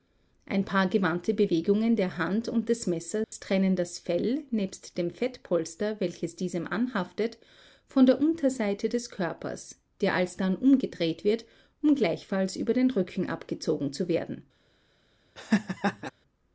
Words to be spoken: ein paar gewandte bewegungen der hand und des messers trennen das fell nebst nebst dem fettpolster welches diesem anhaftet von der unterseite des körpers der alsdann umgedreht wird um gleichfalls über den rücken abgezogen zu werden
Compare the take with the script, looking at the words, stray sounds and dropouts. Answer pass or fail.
fail